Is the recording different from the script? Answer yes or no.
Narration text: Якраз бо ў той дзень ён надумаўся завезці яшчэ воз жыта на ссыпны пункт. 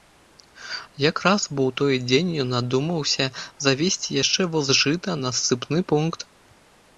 no